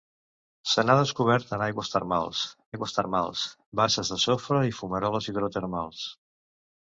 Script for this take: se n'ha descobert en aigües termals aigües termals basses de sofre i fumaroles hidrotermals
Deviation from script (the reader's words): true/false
false